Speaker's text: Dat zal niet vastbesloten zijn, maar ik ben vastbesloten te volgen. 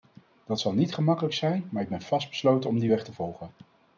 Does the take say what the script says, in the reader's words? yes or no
no